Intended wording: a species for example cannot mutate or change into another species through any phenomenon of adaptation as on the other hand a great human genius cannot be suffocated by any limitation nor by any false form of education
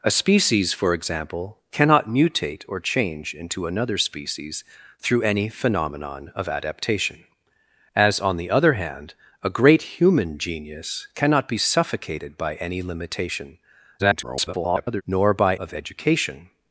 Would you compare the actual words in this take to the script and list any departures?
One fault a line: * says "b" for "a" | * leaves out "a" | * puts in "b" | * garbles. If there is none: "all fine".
* garbles
* leaves out "any false form"